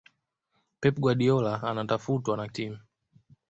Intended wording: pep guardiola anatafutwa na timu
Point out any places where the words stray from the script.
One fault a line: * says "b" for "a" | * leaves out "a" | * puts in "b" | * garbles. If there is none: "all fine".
all fine